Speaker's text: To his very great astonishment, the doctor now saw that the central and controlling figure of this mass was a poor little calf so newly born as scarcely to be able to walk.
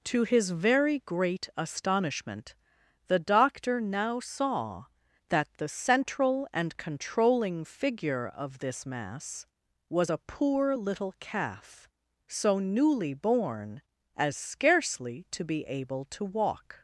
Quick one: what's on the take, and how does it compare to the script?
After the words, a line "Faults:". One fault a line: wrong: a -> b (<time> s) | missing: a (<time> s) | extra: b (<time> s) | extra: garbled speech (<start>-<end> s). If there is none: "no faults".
To his very great astonishment, the doctor now saw that the central and controlling figure of this mass was a poor little calf so newly born as scarcely to be able to walk.
Faults:
no faults